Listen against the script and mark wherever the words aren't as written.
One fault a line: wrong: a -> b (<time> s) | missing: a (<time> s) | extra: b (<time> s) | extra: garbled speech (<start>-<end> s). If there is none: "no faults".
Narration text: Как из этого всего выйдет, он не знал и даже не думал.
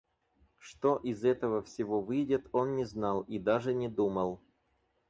wrong: Как -> Что (0.6 s)